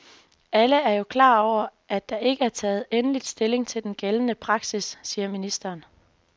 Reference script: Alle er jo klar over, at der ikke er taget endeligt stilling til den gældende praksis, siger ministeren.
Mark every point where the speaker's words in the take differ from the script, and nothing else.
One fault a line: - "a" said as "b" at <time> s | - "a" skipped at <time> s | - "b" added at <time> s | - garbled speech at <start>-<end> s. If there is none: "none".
none